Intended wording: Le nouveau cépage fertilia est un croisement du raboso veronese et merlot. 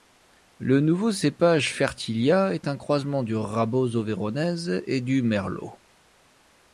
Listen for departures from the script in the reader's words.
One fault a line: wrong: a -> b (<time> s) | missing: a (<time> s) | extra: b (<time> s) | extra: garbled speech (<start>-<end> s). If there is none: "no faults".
extra: du (5.0 s)